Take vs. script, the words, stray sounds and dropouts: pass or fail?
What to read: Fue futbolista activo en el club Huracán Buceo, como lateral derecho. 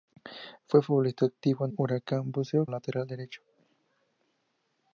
fail